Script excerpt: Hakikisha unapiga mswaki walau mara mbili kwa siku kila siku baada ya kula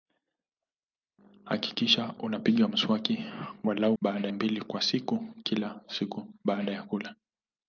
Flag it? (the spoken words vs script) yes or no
yes